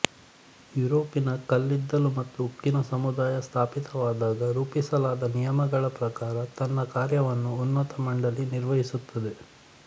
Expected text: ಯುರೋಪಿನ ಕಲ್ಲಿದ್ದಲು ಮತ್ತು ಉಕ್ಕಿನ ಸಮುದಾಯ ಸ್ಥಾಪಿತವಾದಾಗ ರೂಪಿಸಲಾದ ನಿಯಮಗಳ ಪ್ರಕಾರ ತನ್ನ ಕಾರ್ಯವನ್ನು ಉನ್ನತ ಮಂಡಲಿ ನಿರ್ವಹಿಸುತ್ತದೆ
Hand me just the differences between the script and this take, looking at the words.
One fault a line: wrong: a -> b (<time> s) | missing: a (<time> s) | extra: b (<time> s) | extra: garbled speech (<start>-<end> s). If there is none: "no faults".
no faults